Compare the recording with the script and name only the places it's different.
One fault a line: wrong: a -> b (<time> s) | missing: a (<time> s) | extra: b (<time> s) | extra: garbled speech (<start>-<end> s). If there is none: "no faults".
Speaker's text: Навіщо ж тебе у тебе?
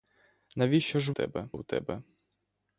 no faults